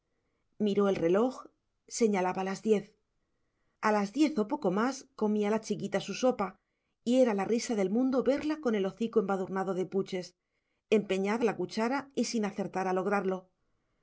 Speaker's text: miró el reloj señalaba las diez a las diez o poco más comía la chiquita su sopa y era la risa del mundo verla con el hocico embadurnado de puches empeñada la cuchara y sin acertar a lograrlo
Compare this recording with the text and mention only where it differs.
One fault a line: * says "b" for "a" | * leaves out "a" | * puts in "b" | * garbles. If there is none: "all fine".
all fine